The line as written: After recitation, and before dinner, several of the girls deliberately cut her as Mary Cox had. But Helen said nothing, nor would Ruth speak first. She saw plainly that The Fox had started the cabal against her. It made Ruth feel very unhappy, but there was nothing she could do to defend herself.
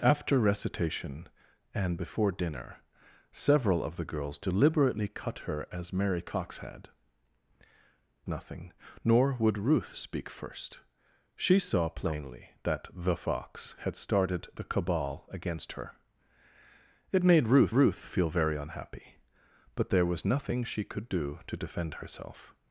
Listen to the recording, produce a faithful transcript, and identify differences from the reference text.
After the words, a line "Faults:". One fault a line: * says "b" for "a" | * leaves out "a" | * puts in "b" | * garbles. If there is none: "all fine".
After recitation, and before dinner, several of the girls deliberately cut her as Mary Cox had. Nothing, nor would Ruth speak first. She saw plainly that The Fox had started the cabal against her. It made Ruth Ruth feel very unhappy, but there was nothing she could do to defend herself.
Faults:
* leaves out "But Helen said"
* puts in "Ruth"